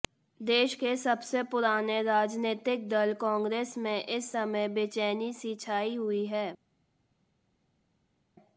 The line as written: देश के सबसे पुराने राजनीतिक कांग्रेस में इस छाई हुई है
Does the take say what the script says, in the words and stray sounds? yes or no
no